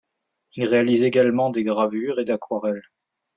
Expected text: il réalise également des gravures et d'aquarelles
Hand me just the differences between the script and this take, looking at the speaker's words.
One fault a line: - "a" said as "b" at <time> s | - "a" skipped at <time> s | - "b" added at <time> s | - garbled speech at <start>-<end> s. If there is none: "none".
none